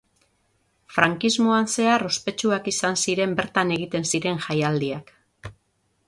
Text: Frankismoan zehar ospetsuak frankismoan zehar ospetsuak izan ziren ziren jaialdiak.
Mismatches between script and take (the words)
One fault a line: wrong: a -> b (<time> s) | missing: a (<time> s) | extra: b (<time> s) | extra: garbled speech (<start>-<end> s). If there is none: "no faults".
wrong: frankismoan zehar ospetsuak izan ziren -> izan ziren bertan egiten (2.7 s)